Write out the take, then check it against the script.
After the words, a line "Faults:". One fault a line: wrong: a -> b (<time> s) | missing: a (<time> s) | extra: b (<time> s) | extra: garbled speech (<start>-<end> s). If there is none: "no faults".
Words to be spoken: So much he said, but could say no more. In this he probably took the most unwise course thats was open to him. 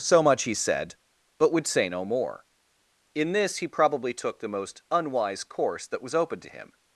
So much he said, but would say no more. In this he probably took the most unwise course that was open to him.
Faults:
wrong: could -> would (1.5 s)
wrong: thats -> that (5.8 s)